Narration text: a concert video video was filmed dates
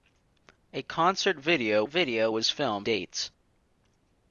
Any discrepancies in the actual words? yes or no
no